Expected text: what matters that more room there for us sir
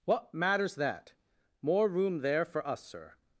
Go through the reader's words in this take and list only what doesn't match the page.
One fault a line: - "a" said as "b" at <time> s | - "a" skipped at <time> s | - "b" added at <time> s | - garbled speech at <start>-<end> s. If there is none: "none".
none